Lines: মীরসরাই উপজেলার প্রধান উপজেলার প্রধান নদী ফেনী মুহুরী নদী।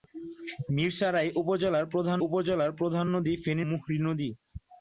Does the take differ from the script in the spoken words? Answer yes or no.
no